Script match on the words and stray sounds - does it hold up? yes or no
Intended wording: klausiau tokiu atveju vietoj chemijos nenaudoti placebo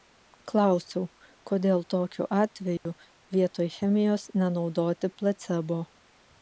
no